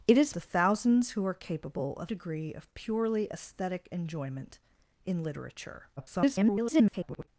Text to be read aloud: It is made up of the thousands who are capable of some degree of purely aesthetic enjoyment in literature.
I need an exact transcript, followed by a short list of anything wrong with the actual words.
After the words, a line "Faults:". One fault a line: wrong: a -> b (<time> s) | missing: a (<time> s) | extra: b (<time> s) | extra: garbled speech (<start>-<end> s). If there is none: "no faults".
It is the thousands who are capable of degree of purely aesthetic enjoyment in literature. [garbled]
Faults:
missing: made up of (0.3 s)
missing: some (2.1 s)
extra: garbled speech (6.0-7.3 s)